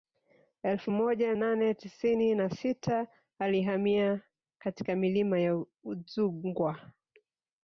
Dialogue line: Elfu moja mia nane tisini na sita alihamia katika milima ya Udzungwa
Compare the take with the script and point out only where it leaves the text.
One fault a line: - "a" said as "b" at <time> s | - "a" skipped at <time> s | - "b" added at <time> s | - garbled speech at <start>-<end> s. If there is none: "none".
- "mia" skipped at 1.3 s